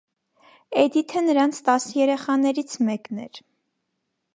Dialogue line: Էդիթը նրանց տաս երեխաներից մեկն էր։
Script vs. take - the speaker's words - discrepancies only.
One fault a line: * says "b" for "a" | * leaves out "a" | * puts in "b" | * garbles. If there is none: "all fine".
all fine